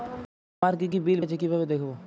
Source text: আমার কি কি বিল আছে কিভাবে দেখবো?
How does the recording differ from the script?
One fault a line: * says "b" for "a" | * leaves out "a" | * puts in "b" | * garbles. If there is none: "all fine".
all fine